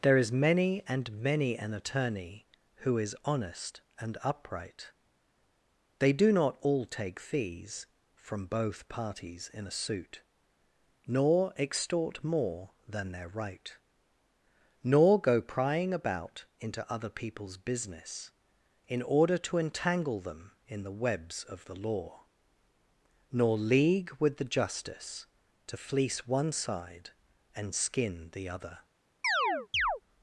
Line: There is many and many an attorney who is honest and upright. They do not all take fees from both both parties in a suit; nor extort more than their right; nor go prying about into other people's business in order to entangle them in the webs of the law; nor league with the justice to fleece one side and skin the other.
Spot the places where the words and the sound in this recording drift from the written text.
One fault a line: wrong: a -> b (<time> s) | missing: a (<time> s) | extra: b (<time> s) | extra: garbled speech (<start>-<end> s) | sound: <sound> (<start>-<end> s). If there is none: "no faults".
missing: both (8.9 s)
sound: chirp (29.2-30.0 s)